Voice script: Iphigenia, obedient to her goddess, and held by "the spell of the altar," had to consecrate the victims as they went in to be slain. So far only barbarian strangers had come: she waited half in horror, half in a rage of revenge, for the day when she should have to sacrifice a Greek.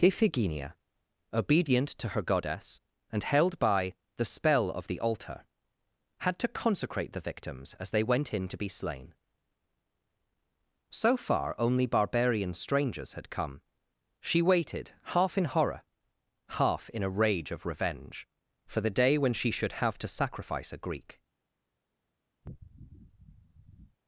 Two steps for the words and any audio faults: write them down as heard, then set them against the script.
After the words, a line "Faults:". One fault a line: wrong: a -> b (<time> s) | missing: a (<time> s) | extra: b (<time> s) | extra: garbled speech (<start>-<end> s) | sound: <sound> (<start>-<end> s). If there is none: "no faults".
Iphigenia, obedient to her goddess, and held by "the spell of the altar," had to consecrate the victims as they went in to be slain. So far only barbarian strangers had come: she waited half in horror, half in a rage of revenge, for the day when she should have to sacrifice a Greek.
Faults:
sound: sniff (22.4-24.0 s)